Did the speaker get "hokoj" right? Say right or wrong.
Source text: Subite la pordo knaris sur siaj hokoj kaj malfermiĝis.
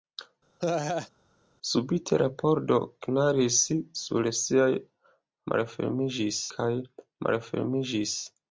wrong